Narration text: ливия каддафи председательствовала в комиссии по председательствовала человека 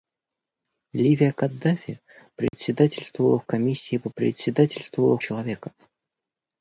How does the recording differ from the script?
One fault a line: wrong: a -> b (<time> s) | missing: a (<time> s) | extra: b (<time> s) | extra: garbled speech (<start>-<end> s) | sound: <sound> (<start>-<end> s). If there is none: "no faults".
sound: dropout (2.5-2.5 s)